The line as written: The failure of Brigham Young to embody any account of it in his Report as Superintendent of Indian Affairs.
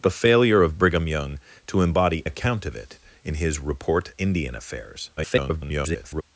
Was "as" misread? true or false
true